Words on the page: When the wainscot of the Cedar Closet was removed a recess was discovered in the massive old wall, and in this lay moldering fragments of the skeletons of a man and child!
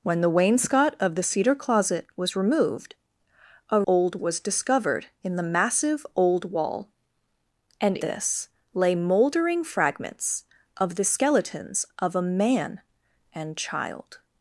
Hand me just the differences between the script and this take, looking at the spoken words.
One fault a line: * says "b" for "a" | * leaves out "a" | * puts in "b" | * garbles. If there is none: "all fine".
* says "old" for "recess"
* leaves out "in"